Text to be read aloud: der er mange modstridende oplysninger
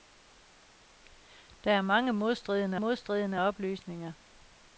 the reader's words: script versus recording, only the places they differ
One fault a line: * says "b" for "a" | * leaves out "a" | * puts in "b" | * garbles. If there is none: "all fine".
* puts in "modstridende"